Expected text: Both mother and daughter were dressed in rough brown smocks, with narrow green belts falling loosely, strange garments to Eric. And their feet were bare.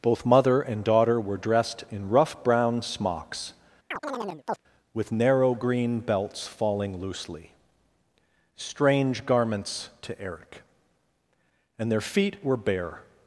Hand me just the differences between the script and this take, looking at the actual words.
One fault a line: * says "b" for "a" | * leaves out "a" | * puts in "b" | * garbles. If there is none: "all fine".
all fine